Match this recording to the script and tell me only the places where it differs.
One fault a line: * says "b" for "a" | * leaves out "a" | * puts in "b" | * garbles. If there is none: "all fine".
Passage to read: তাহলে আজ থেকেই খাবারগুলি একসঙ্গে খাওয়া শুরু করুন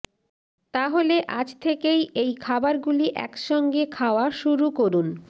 * puts in "এই"